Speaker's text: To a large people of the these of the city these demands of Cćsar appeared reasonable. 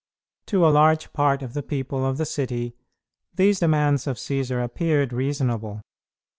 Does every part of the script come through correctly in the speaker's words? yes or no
no